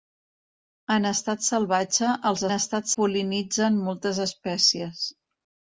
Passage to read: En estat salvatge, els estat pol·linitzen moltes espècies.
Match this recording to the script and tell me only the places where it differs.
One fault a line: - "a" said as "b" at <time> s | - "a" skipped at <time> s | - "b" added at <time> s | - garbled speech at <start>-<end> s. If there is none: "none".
none